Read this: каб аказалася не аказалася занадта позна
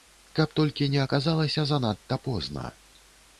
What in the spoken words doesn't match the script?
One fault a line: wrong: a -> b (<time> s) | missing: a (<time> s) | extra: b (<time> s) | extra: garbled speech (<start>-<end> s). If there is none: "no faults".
wrong: аказалася -> толькі (0.6 s)